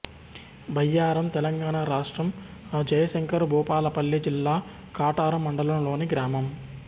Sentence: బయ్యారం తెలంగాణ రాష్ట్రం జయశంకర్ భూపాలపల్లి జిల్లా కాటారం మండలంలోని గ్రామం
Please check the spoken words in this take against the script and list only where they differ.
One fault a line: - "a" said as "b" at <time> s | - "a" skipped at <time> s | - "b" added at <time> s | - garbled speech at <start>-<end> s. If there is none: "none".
none